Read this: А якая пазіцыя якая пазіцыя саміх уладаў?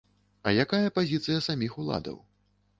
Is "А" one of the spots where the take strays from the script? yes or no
no